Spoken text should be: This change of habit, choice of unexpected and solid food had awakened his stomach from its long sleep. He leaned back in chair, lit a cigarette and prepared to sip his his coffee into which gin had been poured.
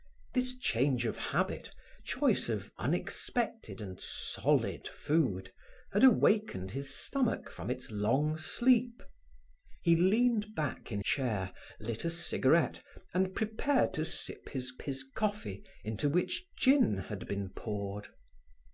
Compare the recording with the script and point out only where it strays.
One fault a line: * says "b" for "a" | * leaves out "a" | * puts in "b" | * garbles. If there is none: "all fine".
all fine